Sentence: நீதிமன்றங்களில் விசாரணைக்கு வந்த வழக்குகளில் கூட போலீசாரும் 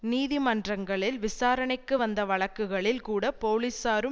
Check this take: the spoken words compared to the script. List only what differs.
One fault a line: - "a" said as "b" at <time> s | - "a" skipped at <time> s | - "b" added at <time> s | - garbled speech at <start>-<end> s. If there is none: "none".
none